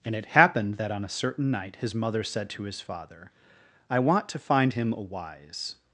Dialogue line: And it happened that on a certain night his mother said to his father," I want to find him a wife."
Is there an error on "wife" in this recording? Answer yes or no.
yes